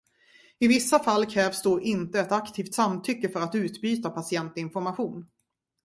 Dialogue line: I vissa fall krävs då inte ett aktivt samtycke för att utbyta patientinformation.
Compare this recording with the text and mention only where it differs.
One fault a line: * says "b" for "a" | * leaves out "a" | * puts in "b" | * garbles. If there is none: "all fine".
all fine